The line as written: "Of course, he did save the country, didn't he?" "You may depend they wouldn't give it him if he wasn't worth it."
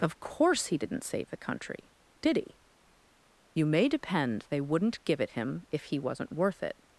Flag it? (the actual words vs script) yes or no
yes